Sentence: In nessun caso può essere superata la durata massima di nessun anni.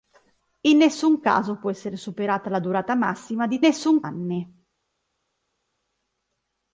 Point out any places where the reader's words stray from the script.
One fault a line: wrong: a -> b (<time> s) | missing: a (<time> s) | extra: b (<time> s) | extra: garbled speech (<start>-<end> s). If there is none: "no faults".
no faults